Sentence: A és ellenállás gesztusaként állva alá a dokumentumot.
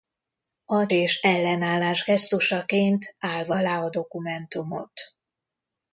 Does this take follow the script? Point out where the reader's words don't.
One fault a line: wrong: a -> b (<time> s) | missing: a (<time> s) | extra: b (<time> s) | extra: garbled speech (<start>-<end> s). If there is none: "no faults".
no faults